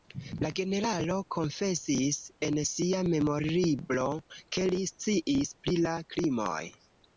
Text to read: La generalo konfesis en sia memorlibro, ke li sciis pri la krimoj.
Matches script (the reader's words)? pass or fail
pass